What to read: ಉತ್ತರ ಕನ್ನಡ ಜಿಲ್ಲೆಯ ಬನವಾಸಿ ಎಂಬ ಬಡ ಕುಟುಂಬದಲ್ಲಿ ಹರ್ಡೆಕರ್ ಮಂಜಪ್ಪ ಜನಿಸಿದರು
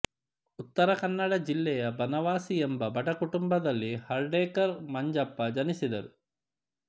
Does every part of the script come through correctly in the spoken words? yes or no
yes